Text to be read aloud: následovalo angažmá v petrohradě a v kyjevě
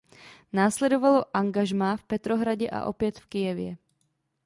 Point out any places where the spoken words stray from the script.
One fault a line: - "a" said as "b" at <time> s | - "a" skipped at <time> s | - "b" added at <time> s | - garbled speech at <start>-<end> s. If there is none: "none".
- "opět" added at 2.9 s